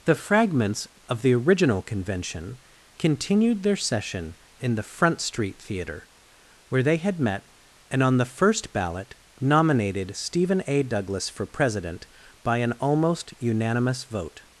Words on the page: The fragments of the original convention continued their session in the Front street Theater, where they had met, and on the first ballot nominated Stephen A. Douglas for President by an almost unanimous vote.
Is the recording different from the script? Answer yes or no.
no